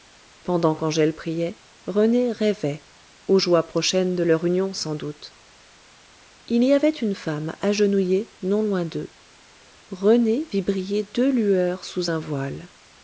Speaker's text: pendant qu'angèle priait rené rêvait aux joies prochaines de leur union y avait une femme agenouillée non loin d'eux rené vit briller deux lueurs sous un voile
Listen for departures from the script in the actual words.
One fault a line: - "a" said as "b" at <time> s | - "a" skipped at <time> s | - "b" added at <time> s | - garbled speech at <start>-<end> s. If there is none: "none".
- "sans doute il" added at 4.7 s